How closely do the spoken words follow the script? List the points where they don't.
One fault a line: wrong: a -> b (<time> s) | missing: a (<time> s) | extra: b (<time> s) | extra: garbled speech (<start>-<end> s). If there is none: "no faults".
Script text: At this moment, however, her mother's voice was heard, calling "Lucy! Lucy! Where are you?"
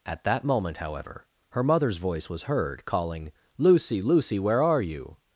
wrong: this -> that (0.2 s)